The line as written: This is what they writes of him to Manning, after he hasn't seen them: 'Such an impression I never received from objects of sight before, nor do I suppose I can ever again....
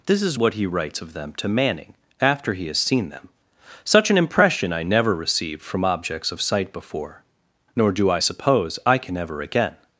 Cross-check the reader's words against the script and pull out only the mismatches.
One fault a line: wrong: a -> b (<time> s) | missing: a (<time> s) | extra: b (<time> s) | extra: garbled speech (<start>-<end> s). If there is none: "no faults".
wrong: they -> he (0.5 s)
wrong: him -> them (1.1 s)
wrong: hasn't -> has (2.7 s)